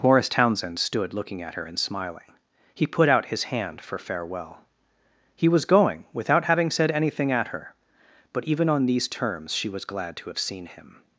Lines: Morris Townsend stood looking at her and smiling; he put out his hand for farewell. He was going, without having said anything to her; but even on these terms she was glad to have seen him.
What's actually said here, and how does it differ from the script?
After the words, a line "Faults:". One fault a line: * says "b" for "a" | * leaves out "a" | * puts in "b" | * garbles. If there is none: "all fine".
Morris Townsend stood looking at her and smiling; he put out his hand for farewell. He was going, without having said anything at her; but even on these terms she was glad to have seen him.
Faults:
* says "at" for "to"